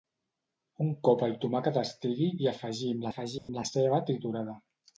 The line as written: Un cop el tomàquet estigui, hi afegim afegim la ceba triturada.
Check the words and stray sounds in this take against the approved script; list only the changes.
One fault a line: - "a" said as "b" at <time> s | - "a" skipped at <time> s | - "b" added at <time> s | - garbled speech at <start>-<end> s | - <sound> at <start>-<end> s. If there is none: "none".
- dropout at 3.4-3.5 s